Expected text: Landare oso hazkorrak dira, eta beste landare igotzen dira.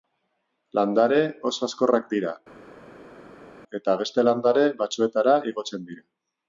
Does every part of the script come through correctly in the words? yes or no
no